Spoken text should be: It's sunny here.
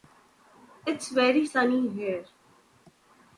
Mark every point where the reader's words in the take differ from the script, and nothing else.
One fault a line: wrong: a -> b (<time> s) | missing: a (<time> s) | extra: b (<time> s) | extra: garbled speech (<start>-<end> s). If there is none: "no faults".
extra: very (1.1 s)